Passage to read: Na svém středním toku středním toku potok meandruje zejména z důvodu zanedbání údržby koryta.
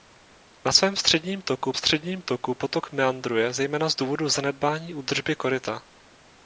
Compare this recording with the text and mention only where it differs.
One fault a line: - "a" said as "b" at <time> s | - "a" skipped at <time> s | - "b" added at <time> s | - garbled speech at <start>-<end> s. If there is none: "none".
none